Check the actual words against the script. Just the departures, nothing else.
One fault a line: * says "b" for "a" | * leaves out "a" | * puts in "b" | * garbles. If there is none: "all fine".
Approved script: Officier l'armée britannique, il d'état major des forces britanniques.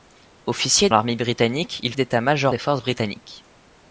all fine